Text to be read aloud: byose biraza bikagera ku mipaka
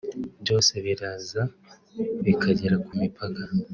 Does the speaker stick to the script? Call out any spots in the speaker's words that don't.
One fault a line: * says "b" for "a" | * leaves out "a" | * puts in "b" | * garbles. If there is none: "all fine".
all fine